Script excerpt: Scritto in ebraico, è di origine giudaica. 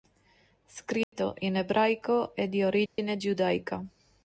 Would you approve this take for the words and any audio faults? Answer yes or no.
no